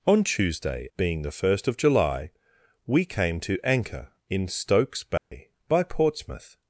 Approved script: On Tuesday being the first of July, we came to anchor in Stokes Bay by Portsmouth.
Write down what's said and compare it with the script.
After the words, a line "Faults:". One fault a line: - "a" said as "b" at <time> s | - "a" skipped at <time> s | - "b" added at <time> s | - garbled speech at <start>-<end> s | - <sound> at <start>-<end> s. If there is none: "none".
On Tuesday being the first of July, we came to anchor in Stokes Bay by Portsmouth.
Faults:
- dropout at 5.2-5.3 s